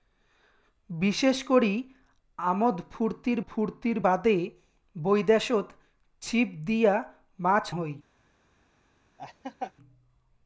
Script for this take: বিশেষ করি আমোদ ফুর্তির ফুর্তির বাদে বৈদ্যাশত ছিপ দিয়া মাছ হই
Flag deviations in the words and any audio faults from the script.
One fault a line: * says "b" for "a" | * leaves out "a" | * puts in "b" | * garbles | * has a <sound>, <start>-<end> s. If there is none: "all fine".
* has a laugh, 9.2-9.7 s